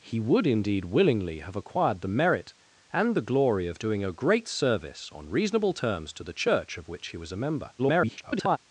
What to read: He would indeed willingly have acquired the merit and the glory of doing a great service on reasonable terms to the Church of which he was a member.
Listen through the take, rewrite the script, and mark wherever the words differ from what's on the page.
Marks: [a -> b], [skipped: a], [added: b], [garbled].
He would indeed willingly have acquired the merit and the glory of doing a great service on reasonable terms to the Church of which he was a member. [garbled]